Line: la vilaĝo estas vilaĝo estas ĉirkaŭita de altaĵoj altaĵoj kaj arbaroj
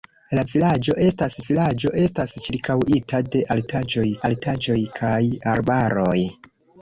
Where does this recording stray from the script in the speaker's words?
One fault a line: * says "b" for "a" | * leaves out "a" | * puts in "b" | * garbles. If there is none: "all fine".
all fine